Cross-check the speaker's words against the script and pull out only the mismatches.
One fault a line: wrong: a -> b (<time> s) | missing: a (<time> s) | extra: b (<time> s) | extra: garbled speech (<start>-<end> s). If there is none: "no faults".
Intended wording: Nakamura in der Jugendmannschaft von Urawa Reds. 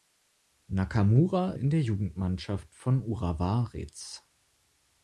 no faults